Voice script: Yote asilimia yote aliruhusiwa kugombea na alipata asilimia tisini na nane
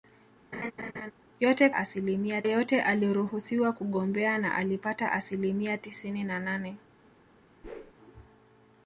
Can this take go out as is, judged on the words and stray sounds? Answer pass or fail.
fail